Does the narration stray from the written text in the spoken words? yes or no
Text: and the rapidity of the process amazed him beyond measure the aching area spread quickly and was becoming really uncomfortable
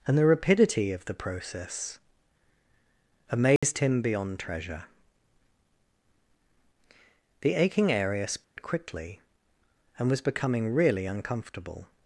yes